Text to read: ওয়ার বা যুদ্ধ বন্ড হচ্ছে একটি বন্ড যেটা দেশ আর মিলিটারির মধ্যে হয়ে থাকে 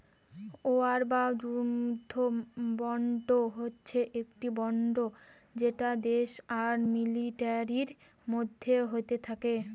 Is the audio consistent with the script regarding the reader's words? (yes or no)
yes